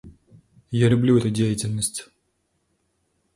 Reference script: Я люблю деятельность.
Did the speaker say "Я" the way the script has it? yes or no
yes